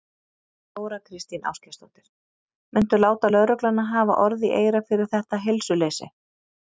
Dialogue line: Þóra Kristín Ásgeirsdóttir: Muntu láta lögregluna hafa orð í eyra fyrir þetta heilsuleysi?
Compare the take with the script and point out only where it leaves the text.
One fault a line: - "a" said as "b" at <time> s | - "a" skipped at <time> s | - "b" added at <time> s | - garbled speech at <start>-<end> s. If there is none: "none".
none